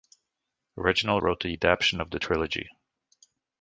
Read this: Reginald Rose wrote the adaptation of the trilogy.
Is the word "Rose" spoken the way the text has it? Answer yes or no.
no